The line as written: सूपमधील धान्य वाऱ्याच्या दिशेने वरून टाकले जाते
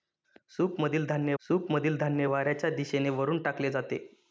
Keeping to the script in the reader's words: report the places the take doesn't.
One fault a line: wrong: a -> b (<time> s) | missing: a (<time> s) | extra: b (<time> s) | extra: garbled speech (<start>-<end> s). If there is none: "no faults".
extra: सूपमधील धान्य (1.4 s)